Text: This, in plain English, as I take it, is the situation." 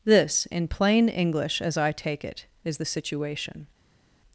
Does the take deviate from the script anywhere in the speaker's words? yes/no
no